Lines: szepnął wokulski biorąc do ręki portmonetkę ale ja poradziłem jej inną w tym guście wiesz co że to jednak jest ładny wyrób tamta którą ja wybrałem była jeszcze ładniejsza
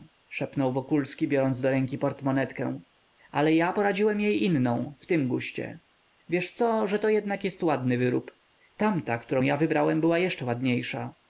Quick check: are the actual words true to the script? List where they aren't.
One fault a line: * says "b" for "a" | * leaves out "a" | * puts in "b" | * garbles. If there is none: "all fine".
all fine